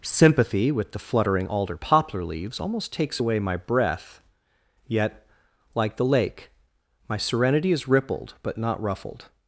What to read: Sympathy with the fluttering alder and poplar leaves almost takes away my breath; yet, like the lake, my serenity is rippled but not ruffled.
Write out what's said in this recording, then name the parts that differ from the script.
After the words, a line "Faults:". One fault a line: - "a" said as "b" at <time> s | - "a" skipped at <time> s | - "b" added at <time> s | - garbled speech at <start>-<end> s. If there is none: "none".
Sympathy with the fluttering alder poplar leaves almost takes away my breath; yet, like the lake, my serenity is rippled but not ruffled.
Faults:
- "and" skipped at 1.8 s